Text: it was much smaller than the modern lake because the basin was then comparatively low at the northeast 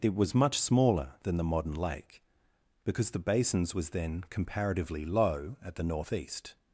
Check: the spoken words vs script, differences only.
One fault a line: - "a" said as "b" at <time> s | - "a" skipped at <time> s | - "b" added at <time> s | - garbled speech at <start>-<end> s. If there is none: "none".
- "basin" said as "basins" at 3.2 s